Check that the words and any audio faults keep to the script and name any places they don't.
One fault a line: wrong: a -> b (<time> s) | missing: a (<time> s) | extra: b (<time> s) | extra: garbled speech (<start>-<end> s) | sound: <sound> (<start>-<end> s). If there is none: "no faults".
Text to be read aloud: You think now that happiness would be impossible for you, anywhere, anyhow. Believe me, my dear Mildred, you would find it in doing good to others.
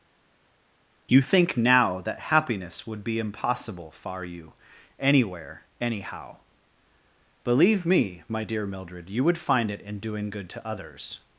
wrong: for -> far (3.9 s)